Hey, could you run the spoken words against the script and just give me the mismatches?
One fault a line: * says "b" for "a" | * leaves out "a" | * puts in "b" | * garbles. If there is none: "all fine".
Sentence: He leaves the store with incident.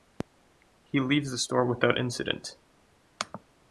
* says "without" for "with"